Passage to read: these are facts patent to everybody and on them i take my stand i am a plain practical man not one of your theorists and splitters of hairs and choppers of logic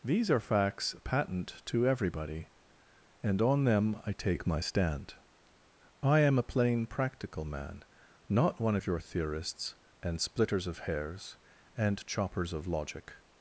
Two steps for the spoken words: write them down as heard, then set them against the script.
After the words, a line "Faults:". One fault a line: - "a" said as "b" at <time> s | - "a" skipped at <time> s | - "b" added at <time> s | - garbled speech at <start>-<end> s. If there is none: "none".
these are facts patent to everybody and on them i take my stand i am a plain practical man not one of your theorists and splitters of hairs and choppers of logic
Faults:
none